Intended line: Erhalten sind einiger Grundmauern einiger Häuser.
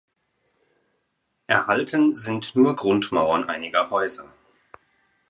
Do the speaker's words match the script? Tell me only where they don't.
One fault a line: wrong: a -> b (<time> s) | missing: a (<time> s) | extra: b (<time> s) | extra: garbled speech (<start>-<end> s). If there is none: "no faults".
wrong: einiger -> nur (2.5 s)